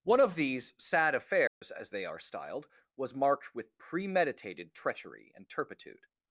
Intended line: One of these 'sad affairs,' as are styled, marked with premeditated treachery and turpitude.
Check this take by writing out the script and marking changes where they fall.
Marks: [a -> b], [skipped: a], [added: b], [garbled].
One of these 'sad affairs,' as [added: they] are styled, [added: was] marked with premeditated treachery and turpitude.